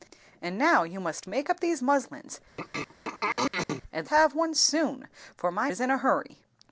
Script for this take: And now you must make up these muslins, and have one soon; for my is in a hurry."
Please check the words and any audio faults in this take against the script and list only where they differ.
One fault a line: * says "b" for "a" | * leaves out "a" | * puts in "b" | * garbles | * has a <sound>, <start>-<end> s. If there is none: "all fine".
* has a throat clearing, 2.6-3.8 s